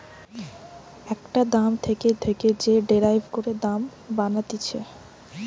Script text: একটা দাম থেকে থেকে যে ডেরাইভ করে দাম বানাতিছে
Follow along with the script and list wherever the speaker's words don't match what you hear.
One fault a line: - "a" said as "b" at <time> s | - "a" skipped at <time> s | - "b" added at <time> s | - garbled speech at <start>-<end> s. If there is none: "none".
none